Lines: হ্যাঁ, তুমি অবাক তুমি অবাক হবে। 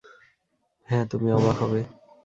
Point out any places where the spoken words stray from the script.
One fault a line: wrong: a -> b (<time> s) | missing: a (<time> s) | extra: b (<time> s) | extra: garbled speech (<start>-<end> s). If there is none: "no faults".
missing: তুমি অবাক (1.6 s)